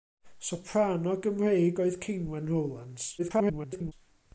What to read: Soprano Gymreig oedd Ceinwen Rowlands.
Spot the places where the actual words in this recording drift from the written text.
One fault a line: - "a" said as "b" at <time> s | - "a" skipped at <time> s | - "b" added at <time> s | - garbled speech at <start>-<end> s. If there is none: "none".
- garbled speech at 3.2-3.9 s